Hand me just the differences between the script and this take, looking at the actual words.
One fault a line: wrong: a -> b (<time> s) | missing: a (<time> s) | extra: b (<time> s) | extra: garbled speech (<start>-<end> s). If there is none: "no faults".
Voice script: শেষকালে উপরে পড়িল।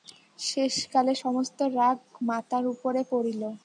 extra: সমস্ত রাগ মাতার (1.2 s)